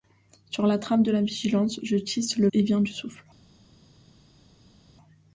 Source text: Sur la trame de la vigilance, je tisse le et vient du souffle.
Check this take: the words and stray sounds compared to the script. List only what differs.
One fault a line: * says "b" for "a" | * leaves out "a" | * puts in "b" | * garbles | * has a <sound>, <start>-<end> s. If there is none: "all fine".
all fine